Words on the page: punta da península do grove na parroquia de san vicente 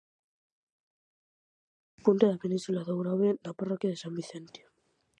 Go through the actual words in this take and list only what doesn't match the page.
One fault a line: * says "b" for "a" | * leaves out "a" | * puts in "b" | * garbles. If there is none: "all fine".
all fine